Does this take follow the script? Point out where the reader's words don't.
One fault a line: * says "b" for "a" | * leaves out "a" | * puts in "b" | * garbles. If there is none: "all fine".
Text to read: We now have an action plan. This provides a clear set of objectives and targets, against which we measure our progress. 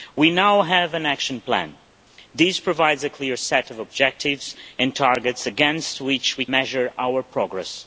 all fine